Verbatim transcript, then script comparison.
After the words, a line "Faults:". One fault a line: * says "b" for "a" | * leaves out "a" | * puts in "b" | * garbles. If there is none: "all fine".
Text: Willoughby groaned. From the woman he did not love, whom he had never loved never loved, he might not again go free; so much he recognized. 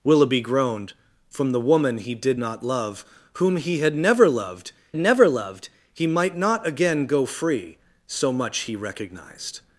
Willoughby groaned. From the woman he did not love, whom he had never loved never loved, he might not again go free; so much he recognized.
Faults:
all fine